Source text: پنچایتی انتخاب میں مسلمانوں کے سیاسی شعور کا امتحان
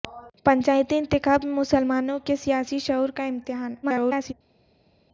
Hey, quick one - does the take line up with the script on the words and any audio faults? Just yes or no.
no